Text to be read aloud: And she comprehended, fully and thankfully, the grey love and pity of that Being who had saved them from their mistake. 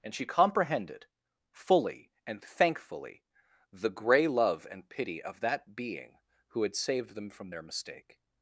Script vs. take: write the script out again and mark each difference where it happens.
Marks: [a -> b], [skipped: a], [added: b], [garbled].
And she comprehended, fully and thankfully, the grey love and pity of that Being who had saved them from their mistake.